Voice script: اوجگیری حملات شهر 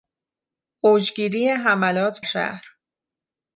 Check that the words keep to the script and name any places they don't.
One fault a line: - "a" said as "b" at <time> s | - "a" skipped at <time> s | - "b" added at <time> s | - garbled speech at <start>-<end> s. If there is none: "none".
none